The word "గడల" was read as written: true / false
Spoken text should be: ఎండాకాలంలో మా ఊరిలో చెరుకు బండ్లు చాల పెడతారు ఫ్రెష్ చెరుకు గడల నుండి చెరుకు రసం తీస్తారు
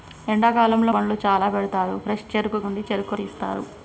false